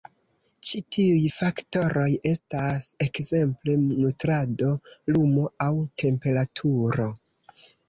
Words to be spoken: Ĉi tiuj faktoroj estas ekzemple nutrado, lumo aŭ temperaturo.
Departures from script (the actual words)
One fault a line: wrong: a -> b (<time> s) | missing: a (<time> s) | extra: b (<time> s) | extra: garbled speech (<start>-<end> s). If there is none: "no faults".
no faults